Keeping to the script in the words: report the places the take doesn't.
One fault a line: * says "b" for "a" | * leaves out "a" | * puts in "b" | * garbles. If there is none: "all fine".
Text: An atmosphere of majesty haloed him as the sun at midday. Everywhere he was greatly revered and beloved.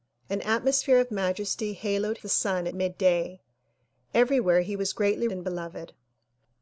* leaves out "him as"
* leaves out "at"
* leaves out "revered"